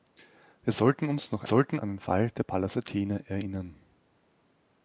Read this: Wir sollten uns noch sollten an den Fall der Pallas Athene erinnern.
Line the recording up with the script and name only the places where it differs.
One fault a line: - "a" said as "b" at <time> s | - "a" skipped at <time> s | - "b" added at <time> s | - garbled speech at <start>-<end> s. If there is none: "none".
none